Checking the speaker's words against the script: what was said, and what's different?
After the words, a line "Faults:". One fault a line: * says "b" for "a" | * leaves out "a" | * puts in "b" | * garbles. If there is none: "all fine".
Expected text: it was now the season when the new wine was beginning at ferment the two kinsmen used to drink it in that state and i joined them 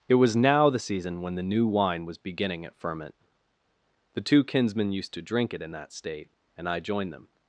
it was now the season when the new wine was beginning at ferment the two kinsmen used to drink it in that state and i joined them
Faults:
all fine